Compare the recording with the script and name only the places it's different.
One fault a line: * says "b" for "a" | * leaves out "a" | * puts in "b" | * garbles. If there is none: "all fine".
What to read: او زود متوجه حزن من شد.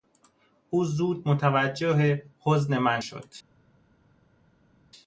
all fine